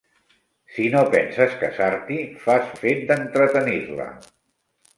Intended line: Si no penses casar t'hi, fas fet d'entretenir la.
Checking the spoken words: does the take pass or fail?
pass